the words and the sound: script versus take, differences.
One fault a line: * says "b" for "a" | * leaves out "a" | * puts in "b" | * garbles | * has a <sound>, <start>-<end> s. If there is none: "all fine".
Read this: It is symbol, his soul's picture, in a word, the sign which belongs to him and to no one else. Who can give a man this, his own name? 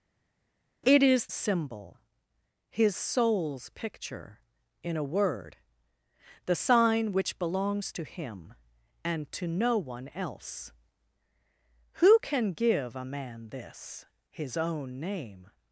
all fine